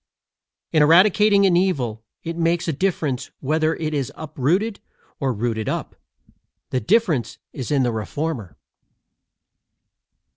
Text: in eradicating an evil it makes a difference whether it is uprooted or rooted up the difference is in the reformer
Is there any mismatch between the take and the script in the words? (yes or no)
no